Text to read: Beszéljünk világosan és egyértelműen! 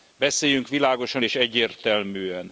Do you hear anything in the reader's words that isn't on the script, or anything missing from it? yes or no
no